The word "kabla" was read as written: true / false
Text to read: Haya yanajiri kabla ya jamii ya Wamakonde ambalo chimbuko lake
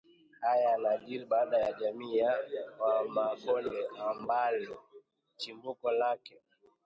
false